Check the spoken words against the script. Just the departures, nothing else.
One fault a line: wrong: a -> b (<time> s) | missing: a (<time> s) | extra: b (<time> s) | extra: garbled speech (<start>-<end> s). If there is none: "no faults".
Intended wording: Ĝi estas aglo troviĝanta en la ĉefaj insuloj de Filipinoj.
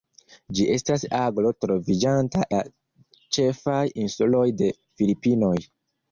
missing: en (2.5 s)